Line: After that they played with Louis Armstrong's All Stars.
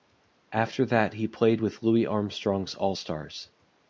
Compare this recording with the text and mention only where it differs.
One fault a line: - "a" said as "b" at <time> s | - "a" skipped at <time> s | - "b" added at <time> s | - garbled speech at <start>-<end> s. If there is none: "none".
- "they" said as "he" at 1.1 s